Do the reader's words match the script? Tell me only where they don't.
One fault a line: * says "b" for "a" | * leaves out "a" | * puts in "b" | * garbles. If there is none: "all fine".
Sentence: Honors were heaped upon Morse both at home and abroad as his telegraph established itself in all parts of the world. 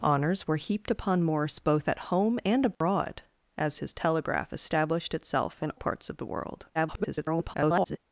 * leaves out "all"
* garbles